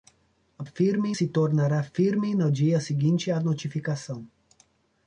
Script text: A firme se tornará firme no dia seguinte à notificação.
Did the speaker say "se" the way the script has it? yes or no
yes